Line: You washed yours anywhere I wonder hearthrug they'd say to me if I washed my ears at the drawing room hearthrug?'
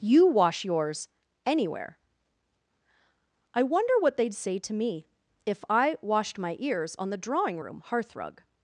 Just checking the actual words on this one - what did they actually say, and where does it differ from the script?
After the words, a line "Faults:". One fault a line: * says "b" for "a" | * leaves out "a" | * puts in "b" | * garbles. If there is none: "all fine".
You wash yours anywhere I wonder what they'd say to me if I washed my ears on the drawing room hearthrug?'
Faults:
* says "wash" for "washed"
* says "what" for "hearthrug"
* says "on" for "at"